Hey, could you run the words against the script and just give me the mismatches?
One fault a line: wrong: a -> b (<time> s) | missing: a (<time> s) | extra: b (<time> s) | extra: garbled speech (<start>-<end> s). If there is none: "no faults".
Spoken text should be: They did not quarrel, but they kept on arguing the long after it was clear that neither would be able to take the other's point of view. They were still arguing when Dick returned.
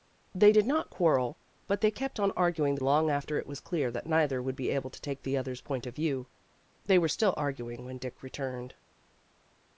no faults